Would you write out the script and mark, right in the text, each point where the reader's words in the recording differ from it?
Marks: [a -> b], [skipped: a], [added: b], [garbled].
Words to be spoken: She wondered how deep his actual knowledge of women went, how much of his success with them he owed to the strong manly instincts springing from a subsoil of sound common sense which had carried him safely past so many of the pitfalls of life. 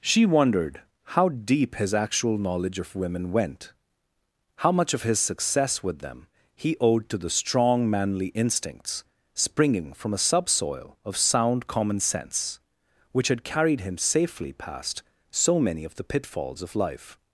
She wondered how deep his actual knowledge of women went, how much of his success with them he owed to the strong manly instincts springing from a subsoil of sound common sense which had carried him safely past so many of the pitfalls of life.